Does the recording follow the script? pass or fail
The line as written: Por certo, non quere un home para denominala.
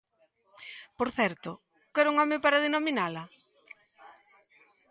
fail